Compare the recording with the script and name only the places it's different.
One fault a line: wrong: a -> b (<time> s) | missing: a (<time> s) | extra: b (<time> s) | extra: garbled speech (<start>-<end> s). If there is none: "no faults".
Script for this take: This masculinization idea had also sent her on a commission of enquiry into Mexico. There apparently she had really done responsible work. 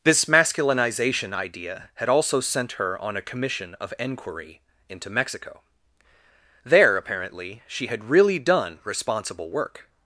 no faults